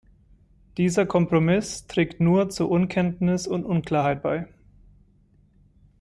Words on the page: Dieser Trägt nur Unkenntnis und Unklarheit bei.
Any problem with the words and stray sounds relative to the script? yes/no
yes